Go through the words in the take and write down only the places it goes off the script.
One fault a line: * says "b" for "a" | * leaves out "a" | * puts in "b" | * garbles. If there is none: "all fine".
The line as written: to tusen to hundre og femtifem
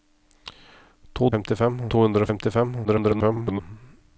* says "femtifem" for "tusen"
* garbles